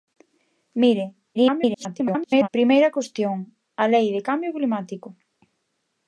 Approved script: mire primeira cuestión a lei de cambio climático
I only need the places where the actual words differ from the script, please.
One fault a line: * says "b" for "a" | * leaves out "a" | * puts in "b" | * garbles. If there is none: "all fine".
* garbles